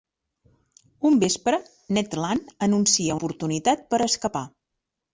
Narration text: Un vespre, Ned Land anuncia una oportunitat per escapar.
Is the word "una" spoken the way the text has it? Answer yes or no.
no